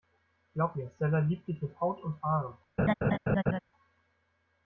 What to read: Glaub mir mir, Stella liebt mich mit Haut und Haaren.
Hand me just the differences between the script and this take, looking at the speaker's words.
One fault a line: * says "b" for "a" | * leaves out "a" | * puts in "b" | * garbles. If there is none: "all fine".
* leaves out "mir"
* says "dich" for "mich"